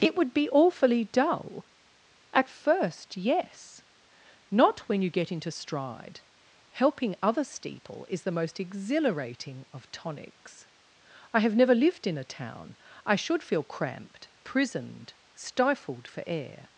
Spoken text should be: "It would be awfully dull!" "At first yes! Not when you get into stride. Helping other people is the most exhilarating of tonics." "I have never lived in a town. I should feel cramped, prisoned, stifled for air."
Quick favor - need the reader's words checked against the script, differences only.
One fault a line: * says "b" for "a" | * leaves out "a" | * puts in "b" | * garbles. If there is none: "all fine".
* says "steeple" for "people"